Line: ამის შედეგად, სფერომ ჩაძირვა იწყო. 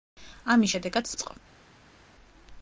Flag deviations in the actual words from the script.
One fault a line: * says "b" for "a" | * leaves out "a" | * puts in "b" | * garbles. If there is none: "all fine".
* leaves out "სფერომ ჩაძირვა"